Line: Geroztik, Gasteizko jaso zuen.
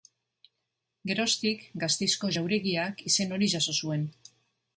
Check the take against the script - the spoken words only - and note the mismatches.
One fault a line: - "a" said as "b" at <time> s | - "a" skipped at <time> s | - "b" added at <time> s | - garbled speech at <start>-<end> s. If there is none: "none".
- "jauregiak izen hori" added at 2.4 s